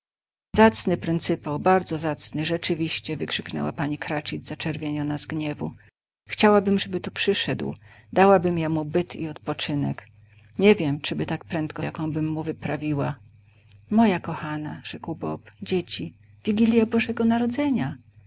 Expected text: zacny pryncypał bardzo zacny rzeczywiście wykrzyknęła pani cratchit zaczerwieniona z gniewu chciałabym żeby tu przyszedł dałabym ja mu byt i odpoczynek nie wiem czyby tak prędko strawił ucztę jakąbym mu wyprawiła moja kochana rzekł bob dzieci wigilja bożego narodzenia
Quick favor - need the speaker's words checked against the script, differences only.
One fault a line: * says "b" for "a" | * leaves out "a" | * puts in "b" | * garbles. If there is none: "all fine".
* leaves out "strawił ucztę"